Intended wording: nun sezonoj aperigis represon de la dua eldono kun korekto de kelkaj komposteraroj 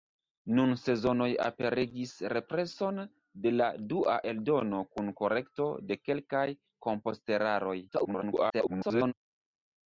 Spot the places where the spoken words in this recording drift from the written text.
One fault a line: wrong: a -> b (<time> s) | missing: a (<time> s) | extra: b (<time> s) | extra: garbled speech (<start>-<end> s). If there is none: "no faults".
extra: garbled speech (7.9-9.1 s)